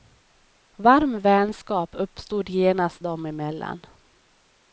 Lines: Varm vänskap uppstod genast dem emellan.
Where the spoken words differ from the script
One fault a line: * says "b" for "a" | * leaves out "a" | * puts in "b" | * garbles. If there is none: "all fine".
all fine